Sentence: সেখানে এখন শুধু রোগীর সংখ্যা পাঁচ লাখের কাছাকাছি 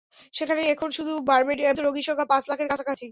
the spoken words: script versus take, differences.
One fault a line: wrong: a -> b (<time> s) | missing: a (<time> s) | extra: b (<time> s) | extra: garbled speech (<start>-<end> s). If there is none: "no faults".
no faults